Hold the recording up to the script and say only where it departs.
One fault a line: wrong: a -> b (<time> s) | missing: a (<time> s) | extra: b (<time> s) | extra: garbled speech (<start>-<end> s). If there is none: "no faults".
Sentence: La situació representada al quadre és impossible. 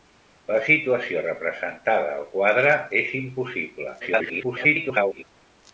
extra: garbled speech (4.0-5.2 s)